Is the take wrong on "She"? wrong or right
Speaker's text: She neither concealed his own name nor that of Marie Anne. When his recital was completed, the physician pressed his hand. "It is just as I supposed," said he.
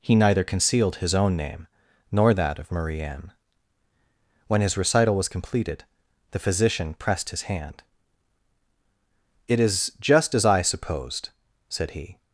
wrong